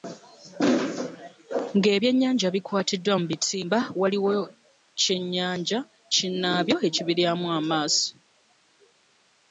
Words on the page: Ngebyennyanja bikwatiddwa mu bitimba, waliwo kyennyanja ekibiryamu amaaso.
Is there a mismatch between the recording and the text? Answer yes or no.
yes